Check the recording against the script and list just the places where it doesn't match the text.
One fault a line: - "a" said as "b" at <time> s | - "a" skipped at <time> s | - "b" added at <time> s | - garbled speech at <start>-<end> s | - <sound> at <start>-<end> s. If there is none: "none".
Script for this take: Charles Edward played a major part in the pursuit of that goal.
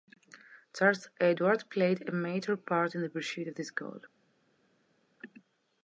- "that" said as "this" at 3.5 s